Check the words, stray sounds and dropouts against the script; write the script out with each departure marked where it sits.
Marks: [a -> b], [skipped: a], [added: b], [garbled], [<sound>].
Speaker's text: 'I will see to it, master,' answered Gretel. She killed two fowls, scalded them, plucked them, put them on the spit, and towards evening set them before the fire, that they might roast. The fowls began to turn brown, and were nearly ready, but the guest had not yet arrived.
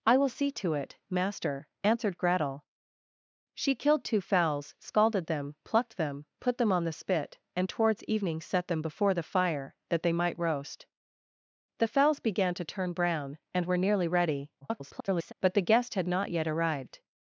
'I will see to it, master,' answered Gretel. She killed two fowls, scalded them, plucked them, put them on the spit, and towards evening set them before the fire, that they might roast. The fowls began to turn brown, and were nearly ready, [garbled] but the guest had not yet arrived.